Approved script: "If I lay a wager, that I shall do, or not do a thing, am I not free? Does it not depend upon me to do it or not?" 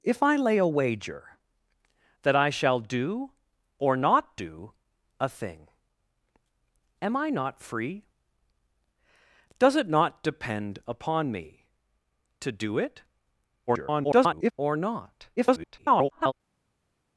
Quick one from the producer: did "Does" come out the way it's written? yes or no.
yes